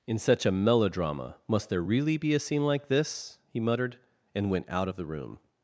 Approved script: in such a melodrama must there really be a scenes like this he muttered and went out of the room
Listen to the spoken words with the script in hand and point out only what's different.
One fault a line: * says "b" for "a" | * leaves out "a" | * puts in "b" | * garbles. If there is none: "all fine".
* says "scene" for "scenes"